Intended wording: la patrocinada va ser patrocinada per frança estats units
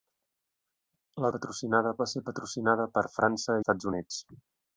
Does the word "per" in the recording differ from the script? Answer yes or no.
no